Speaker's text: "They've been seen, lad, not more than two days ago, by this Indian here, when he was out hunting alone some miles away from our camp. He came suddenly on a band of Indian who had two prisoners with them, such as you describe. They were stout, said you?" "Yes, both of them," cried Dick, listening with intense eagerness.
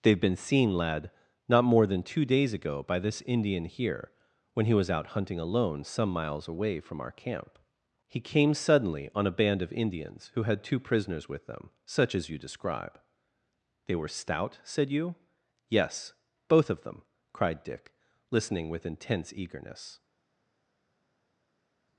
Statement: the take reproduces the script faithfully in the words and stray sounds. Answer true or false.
false